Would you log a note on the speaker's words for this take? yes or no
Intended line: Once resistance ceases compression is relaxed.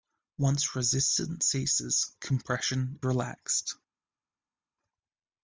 yes